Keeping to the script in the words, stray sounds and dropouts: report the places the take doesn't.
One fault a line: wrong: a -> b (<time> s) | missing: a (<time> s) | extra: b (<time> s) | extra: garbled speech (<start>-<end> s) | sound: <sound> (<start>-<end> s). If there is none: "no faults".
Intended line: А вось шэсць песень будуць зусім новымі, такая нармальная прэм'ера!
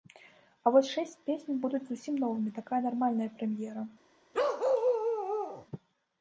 sound: bark (4.3-5.7 s)